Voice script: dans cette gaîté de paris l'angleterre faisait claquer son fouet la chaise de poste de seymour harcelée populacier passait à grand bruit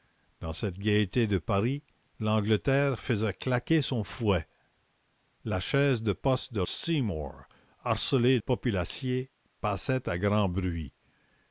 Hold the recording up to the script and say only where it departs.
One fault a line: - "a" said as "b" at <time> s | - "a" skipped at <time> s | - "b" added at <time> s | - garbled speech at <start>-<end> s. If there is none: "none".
none